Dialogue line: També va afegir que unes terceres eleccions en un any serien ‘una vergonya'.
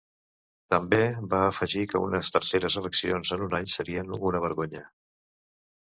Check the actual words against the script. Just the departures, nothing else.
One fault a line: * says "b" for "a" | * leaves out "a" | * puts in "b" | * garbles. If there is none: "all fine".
all fine